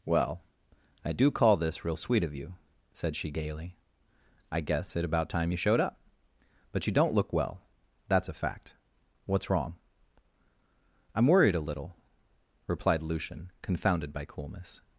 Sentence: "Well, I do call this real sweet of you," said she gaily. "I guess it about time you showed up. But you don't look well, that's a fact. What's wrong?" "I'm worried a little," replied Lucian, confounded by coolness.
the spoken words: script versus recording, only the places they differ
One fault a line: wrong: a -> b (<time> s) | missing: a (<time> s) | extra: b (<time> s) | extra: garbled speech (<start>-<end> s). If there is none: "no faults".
no faults